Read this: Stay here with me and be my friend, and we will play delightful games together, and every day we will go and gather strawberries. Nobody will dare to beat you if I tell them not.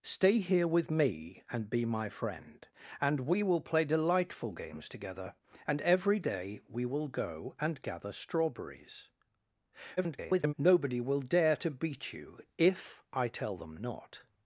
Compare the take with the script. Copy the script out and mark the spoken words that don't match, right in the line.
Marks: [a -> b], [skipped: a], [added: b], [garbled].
Stay here with me and be my friend, and we will play delightful games together, and every day we will go and gather strawberries. [garbled] Nobody will dare to beat you if I tell them not.